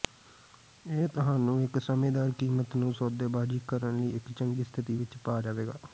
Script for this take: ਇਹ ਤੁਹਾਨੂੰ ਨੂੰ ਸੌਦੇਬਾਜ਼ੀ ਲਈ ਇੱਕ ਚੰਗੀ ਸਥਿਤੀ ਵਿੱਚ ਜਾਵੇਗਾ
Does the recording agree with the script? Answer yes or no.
no